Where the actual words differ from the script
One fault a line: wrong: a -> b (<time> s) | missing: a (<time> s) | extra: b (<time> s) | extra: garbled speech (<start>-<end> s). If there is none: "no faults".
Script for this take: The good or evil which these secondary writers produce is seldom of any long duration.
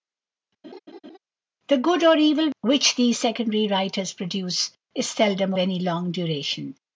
missing: of (5.5 s)